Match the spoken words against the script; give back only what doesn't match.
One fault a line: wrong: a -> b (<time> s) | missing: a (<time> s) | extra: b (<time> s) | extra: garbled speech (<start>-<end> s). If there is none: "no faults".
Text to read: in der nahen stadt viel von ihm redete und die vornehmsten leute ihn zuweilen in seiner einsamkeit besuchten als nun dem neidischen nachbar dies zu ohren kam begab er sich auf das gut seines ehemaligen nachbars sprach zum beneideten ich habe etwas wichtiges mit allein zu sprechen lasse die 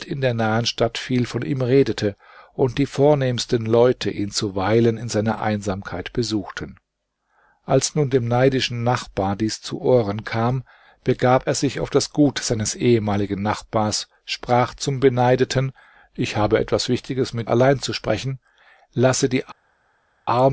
no faults